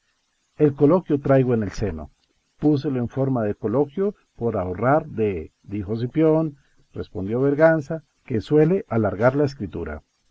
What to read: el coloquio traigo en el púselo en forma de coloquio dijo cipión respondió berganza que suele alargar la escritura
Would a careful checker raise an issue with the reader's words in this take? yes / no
yes